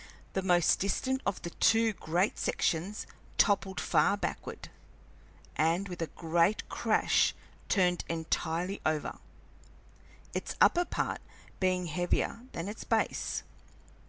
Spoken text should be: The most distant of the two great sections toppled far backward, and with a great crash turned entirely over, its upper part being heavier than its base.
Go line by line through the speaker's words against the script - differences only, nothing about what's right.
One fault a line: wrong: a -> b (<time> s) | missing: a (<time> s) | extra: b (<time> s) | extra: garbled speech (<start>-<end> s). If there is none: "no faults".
no faults